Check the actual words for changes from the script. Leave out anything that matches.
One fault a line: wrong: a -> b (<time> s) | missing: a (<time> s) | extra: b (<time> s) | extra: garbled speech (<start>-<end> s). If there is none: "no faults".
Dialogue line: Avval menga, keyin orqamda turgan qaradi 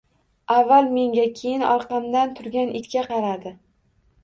extra: itga (2.8 s)